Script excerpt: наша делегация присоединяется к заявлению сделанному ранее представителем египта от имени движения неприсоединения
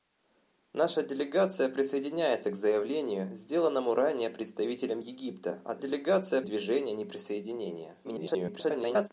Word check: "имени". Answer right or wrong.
wrong